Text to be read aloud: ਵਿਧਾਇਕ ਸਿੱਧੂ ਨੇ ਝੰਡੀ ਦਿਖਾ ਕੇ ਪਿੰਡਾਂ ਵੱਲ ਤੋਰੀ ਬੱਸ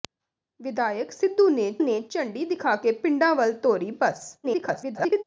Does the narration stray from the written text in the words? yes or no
yes